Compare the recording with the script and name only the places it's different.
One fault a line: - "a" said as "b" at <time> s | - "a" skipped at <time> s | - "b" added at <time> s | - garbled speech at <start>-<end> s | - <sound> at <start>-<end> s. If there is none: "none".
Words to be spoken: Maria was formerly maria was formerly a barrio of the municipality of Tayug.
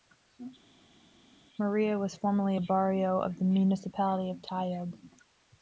- "maria was formerly" skipped at 2.6 s